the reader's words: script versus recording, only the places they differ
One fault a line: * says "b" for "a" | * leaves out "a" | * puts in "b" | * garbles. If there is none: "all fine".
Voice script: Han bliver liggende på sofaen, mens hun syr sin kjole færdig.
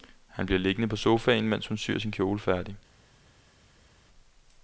all fine